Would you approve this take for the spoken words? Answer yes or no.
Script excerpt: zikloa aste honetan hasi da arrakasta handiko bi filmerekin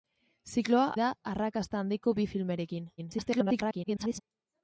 no